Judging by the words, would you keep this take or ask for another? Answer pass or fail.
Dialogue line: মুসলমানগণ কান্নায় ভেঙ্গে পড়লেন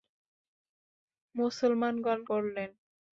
fail